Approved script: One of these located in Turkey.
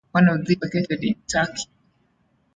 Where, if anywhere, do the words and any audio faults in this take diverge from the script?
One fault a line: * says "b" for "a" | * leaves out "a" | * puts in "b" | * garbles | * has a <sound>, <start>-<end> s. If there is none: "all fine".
all fine